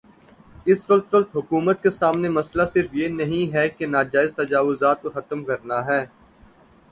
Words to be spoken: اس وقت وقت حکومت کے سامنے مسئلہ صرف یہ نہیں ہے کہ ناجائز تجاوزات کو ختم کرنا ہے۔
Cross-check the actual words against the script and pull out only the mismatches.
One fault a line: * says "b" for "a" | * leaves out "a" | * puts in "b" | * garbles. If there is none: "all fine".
all fine